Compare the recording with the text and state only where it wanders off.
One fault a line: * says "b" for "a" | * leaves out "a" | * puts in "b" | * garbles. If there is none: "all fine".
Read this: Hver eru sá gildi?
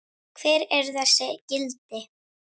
* says "þessi" for "sá"